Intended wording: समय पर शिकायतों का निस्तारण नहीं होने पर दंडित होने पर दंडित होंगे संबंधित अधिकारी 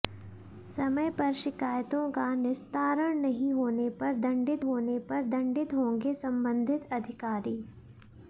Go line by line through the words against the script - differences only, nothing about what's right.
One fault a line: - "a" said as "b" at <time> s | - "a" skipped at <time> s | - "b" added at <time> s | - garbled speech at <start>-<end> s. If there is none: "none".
none